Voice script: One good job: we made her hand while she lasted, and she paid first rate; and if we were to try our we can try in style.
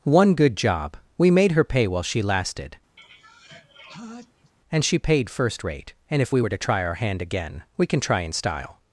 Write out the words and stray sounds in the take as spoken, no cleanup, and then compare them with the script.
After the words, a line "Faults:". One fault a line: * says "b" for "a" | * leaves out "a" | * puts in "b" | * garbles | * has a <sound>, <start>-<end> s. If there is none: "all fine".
One good job: we made her pay while she lasted, and she paid first rate; and if we were to try our hand again, we can try in style.
Faults:
* says "pay" for "hand"
* has a sneeze, 3.0-4.5 s
* puts in "hand again"